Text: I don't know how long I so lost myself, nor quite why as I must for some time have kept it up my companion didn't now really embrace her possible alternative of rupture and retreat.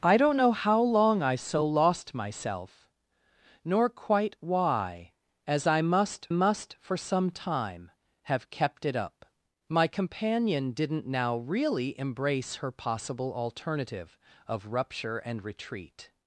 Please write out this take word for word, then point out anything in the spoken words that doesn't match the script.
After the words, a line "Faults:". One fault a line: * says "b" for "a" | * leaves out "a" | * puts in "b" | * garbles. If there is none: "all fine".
I don't know how long I so lost myself, nor quite why as I must must for some time have kept it up my companion didn't now really embrace her possible alternative of rupture and retreat.
Faults:
* puts in "must"